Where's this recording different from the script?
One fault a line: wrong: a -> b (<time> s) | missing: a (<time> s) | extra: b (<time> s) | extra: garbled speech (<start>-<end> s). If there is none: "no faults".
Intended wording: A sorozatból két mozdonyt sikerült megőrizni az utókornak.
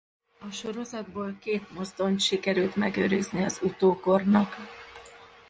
no faults